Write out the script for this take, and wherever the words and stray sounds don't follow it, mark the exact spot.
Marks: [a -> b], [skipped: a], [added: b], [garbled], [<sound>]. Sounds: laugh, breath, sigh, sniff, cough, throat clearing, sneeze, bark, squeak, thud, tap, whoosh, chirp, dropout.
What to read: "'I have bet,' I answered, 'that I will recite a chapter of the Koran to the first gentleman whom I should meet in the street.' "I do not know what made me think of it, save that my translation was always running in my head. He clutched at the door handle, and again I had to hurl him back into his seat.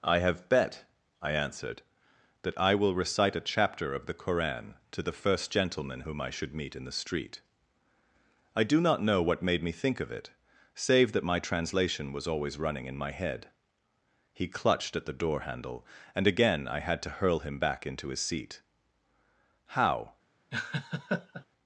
"'I have bet,' I answered, 'that I will recite a chapter of the Koran to the first gentleman whom I should meet in the street.' "I do not know what made me think of it, save that my translation was always running in my head. He clutched at the door handle, and again I had to hurl him back into his seat. [added: How] [laugh]